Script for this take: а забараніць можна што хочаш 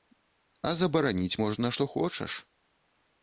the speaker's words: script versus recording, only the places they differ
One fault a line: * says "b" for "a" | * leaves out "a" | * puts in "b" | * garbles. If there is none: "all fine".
all fine